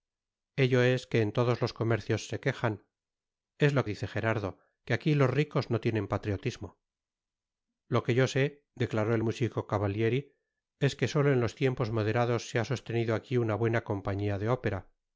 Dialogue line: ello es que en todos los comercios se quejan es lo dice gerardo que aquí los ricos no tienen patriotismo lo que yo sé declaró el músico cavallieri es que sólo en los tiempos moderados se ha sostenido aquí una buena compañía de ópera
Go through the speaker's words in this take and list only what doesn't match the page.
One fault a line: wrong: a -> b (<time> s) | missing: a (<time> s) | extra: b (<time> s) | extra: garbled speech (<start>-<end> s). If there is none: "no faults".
no faults